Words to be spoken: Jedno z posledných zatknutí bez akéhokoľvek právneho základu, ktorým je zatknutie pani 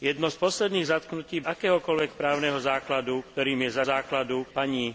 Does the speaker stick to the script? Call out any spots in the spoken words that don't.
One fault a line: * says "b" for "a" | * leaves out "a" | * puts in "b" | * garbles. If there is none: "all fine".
* leaves out "bez"
* says "základu" for "zatknutie"